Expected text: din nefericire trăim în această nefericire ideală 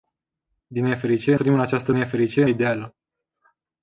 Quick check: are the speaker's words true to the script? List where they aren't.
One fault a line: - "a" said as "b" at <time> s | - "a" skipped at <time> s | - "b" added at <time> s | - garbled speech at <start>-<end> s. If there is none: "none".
none